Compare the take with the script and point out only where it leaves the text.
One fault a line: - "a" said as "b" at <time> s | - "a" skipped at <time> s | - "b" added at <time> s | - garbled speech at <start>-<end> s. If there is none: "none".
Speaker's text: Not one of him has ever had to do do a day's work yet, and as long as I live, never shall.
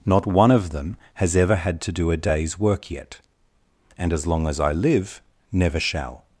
- "him" said as "them" at 0.7 s
- "do" skipped at 2.1 s